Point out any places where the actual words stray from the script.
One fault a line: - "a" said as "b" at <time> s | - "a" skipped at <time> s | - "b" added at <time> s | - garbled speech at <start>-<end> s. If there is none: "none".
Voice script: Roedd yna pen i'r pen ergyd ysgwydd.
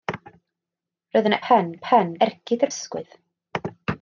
none